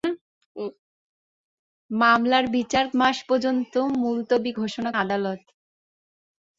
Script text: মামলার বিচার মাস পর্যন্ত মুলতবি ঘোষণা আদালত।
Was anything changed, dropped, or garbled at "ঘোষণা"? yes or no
no